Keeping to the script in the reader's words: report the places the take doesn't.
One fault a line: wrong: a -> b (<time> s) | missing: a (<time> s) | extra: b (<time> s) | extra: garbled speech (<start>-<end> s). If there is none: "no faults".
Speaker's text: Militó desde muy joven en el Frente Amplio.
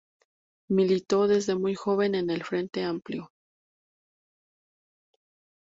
no faults